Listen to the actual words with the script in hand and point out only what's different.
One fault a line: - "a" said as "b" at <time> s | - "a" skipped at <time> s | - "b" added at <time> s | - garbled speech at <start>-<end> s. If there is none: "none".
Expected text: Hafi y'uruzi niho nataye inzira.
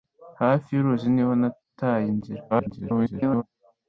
- garbled speech at 2.5-3.4 s